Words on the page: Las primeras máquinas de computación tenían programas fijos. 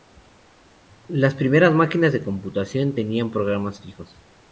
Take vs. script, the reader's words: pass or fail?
pass